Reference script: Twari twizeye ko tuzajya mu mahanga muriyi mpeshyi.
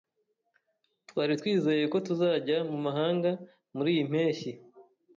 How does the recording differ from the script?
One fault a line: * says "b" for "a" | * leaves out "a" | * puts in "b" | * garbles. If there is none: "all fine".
all fine